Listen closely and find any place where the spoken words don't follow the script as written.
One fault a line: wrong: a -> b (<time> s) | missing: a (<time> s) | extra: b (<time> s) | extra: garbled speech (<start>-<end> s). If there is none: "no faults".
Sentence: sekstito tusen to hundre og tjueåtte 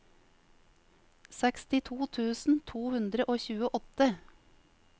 no faults